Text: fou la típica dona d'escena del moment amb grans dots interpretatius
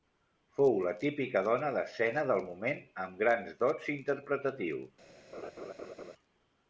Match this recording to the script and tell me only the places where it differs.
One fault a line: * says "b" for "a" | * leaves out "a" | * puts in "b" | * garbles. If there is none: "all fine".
all fine